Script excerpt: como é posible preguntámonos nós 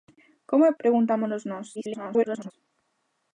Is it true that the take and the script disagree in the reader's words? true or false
true